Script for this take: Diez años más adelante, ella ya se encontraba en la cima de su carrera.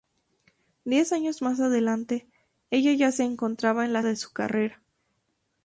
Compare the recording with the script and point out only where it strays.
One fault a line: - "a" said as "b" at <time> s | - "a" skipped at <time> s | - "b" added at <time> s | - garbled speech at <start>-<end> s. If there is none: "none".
- "cima" skipped at 4.0 s